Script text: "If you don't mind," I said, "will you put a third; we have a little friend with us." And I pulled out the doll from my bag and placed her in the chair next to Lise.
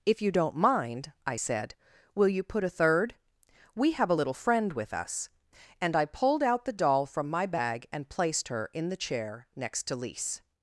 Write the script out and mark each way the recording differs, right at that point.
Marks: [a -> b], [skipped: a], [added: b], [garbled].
"If you don't mind," I said, "will you put a third; we have a little friend with us." And I pulled out the doll from my bag and placed her in the chair next to Lise.